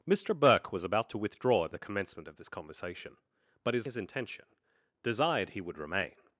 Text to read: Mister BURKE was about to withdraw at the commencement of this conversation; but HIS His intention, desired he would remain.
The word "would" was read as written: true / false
true